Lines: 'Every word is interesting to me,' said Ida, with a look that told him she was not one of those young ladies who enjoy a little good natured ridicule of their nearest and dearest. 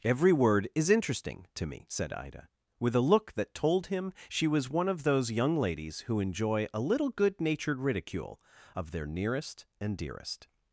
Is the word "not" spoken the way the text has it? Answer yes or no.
no